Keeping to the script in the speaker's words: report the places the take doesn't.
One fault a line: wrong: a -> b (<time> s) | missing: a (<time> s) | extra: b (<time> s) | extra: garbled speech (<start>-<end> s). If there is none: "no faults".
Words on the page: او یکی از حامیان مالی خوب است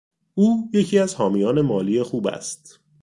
no faults